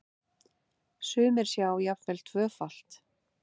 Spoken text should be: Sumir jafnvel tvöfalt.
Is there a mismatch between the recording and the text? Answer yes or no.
yes